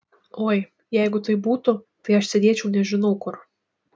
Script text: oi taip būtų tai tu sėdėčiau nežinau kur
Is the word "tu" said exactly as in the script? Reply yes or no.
no